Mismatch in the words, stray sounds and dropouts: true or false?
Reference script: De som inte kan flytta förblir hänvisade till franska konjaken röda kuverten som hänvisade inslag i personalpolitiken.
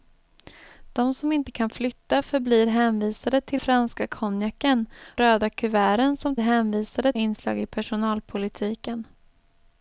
false